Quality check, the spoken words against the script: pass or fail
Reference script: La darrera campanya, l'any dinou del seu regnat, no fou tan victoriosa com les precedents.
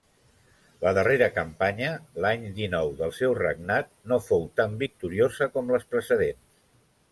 pass